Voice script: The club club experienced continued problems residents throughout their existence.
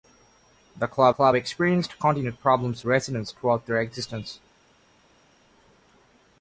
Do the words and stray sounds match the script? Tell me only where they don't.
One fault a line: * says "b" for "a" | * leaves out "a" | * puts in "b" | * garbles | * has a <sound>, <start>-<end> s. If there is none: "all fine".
all fine